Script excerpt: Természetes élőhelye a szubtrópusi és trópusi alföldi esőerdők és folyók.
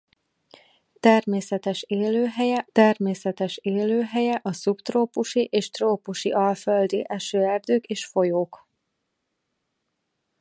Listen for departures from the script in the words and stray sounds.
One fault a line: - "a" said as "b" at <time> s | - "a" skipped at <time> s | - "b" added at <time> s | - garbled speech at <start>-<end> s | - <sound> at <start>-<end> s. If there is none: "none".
- "természetes élőhelye" added at 2.7 s